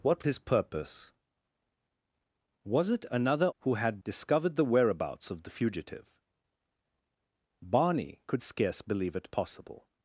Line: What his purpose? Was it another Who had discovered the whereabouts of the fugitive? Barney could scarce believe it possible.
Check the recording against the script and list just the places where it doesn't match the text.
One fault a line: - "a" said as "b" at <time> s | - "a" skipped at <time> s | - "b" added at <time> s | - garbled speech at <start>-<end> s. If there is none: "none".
none